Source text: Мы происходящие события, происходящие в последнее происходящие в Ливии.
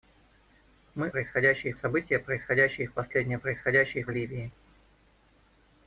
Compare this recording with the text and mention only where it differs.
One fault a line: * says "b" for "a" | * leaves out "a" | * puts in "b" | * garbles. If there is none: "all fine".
all fine